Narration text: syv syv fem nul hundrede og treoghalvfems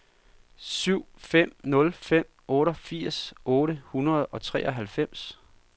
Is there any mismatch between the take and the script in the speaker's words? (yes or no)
yes